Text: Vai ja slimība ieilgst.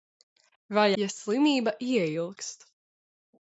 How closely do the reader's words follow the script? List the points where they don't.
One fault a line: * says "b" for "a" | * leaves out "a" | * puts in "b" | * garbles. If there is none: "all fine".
all fine